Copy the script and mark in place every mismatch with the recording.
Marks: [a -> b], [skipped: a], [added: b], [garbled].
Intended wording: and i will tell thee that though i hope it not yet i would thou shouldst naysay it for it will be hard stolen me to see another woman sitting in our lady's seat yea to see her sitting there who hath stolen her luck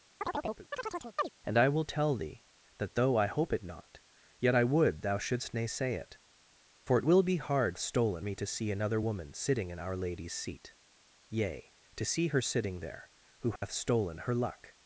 and i will tell thee that though i hope it not yet i would thou shouldst naysay it for it will be hard stolen me to see another woman sitting in our lady's seat yea to see her sitting there who hath stolen her luck